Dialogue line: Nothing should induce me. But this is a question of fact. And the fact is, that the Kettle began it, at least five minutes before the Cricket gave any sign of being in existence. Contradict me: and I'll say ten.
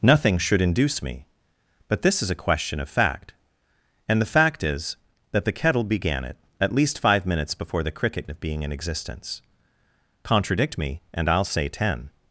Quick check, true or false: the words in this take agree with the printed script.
false